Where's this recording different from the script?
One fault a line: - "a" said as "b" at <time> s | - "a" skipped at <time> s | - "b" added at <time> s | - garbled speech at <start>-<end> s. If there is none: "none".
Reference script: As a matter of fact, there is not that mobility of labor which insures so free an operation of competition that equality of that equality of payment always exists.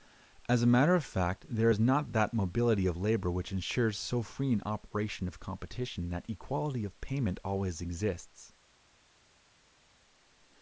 - "that equality of" skipped at 7.0 s